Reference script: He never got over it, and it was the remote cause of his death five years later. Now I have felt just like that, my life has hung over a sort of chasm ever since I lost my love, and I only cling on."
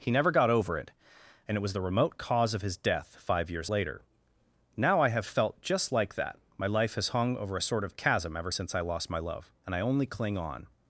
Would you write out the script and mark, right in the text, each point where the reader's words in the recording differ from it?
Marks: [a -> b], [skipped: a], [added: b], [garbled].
He never got over it, and it was the remote cause of his death five years later. Now I have felt just like that, my life has hung over a sort of chasm ever since I lost my love, and I only cling on."